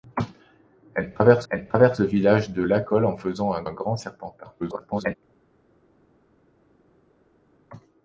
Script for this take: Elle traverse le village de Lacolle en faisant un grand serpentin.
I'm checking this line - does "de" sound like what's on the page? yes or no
yes